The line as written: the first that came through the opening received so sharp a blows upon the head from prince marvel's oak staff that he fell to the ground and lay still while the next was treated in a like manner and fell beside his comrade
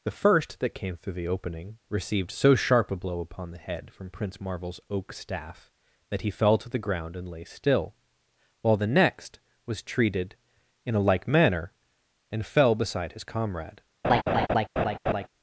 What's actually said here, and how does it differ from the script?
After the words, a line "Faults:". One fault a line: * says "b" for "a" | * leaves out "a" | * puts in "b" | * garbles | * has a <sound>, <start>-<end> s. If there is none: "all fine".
the first that came through the opening received so sharp a blow upon the head from prince marvel's oak staff that he fell to the ground and lay still while the next was treated in a like manner and fell beside his comrade
Faults:
* says "blow" for "blows"
* has a laugh, 14.0-15.3 s